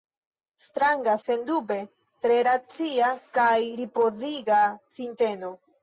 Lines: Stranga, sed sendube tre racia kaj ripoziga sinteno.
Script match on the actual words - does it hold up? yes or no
no